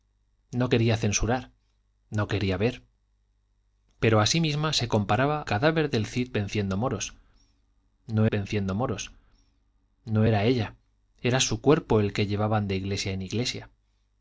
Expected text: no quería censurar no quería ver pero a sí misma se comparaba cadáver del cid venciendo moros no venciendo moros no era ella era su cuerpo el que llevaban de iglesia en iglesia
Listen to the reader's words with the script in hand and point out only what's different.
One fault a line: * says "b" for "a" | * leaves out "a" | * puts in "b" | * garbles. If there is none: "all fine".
all fine